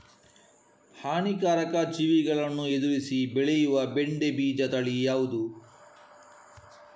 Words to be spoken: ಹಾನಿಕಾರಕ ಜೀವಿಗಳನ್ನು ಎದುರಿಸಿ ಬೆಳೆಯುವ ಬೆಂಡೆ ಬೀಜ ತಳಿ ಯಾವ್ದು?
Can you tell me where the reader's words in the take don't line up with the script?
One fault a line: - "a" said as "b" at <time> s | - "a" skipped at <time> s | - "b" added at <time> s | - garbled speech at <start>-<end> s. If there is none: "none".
none